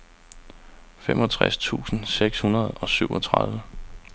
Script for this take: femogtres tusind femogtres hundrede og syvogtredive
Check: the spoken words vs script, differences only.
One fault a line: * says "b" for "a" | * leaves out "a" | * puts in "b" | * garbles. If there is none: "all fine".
* says "seks" for "femogtres"